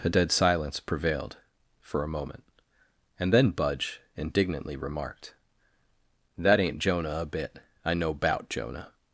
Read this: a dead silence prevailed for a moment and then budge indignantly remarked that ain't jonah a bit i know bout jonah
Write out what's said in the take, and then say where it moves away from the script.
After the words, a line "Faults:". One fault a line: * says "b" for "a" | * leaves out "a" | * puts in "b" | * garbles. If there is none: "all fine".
a dead silence prevailed for a moment and then budge indignantly remarked that ain't jonah a bit i know bout jonah
Faults:
all fine